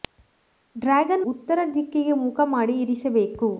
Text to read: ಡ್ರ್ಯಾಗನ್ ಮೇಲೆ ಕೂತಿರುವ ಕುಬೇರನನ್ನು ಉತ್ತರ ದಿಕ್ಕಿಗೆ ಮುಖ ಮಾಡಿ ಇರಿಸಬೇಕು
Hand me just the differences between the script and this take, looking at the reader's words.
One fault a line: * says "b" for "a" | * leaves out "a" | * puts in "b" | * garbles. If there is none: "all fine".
* leaves out "ಮೇಲೆ ಕೂತಿರುವ ಕುಬೇರನನ್ನು"